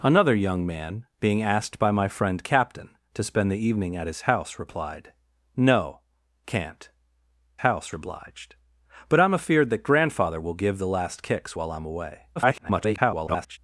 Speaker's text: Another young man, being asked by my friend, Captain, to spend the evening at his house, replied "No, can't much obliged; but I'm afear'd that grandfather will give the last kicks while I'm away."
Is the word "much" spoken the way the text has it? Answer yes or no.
no